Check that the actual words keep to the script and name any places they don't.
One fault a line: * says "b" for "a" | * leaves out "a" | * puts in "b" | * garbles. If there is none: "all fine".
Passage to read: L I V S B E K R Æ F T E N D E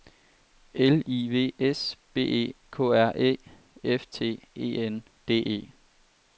all fine